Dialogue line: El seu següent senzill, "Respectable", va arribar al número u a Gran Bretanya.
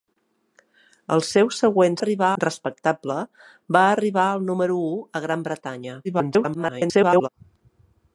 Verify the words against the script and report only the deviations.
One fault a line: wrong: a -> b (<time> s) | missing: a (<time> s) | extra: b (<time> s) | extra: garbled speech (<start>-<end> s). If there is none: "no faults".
wrong: senzill -> arribar (2.0 s)
extra: garbled speech (6.0-7.3 s)